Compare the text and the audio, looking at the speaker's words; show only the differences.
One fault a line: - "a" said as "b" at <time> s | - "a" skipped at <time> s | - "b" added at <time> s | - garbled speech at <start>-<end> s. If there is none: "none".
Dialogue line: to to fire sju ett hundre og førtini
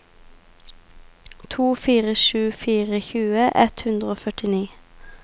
- "to" said as "fire sju" at 1.8 s
- "sju" said as "tjue" at 3.1 s